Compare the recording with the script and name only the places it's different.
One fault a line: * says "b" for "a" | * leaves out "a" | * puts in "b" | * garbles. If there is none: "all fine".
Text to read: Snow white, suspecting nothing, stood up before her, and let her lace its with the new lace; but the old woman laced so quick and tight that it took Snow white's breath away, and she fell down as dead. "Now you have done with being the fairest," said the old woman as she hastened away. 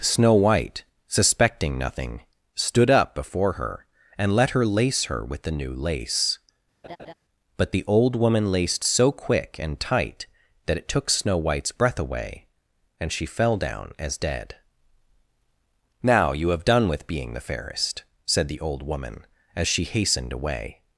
* says "her" for "its"